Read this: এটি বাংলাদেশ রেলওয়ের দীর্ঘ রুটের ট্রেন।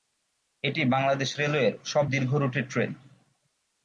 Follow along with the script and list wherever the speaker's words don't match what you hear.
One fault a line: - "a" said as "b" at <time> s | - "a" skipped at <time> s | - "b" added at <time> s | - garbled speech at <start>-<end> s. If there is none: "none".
- "সব" added at 1.8 s